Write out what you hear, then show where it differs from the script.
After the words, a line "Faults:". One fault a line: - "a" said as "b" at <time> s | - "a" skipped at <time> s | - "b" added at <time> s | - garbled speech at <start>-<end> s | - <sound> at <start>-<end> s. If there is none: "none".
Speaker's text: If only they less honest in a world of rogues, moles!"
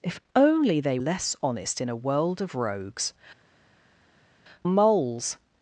If only they less honest in a world of rogues, moles!"
Faults:
none